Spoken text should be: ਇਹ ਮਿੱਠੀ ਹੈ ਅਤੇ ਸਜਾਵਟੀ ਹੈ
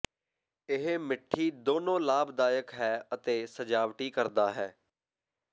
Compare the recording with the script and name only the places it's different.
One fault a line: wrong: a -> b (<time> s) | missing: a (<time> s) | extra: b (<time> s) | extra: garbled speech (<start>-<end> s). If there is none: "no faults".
extra: ਦੋਨੋ ਲਾਭਦਾਇਕ (1.6 s)
extra: ਕਰਦਾ (4.1 s)